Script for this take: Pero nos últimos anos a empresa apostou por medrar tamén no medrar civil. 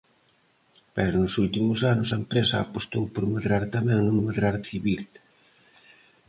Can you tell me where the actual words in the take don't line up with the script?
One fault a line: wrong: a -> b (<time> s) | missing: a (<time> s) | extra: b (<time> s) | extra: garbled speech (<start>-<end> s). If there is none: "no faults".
no faults